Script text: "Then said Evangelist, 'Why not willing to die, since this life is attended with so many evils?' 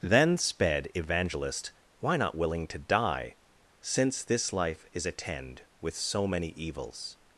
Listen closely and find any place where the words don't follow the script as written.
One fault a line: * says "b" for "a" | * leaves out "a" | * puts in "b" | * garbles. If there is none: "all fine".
* says "sped" for "said"
* says "attend" for "attended"